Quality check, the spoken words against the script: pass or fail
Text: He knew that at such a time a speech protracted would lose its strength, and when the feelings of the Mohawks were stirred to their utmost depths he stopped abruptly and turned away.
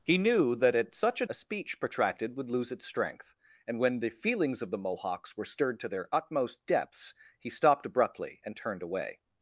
fail